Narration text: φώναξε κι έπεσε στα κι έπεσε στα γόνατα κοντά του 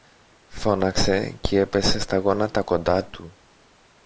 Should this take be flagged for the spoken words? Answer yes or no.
yes